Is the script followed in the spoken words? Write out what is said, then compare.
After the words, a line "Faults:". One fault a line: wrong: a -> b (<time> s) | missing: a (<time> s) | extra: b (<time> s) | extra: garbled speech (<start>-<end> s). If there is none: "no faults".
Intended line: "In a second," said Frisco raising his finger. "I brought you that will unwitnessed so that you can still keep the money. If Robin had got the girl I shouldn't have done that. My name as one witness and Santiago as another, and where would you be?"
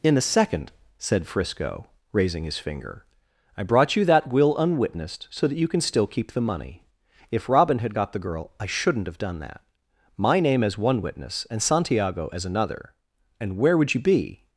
"In a second," said Frisco raising his finger. "I brought you that will unwitnessed so that you can still keep the money. If Robin had got the girl I shouldn't have done that. My name as one witness and Santiago as another, and where would you be?"
Faults:
no faults